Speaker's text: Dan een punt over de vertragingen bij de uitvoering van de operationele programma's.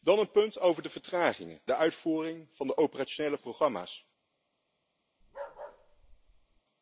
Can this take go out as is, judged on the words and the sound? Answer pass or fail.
fail